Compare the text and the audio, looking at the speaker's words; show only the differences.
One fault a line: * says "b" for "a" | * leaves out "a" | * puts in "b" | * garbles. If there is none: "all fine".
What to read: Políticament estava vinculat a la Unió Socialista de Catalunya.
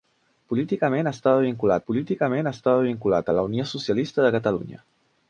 * puts in "políticament estava vinculat"